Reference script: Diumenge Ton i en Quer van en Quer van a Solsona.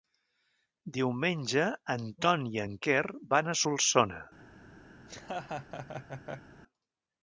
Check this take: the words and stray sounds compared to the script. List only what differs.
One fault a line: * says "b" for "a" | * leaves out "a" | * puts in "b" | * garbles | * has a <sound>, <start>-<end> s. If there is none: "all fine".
* puts in "en"
* leaves out "en Quer van"
* has a laugh, 5.0-6.5 s